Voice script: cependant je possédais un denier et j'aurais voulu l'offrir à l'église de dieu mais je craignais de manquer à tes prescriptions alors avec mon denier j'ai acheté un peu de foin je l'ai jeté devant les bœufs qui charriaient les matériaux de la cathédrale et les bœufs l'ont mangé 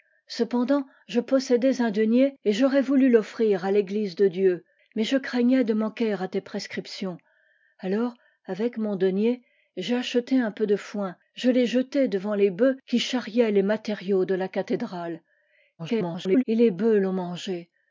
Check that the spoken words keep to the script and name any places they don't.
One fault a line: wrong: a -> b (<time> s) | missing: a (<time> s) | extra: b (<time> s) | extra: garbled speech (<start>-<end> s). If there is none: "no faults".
extra: garbled speech (15.8-16.4 s)